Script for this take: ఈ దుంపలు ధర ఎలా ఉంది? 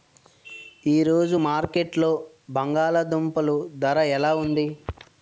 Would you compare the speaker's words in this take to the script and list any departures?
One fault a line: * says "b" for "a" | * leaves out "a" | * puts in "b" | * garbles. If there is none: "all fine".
* puts in "రోజు మార్కెట్లో బంగాళ"